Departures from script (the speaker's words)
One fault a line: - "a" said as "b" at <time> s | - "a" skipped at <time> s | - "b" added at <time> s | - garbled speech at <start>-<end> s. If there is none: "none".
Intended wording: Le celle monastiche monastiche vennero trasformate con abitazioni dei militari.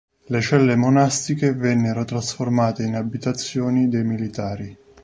- "monastiche" skipped at 1.5 s
- "con" said as "in" at 2.8 s